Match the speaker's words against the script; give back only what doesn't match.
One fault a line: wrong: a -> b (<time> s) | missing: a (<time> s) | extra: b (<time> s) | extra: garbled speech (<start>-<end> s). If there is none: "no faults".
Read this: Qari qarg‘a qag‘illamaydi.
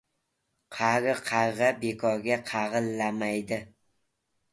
extra: bekorga (1.8 s)